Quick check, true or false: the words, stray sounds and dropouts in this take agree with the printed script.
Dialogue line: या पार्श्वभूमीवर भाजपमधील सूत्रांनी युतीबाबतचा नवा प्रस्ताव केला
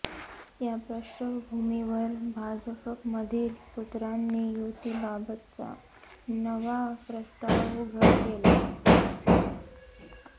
false